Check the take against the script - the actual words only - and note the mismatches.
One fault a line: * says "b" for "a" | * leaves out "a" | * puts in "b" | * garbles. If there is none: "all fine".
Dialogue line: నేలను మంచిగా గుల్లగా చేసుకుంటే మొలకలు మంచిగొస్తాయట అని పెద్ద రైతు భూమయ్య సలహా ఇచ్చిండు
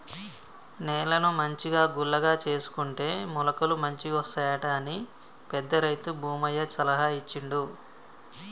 all fine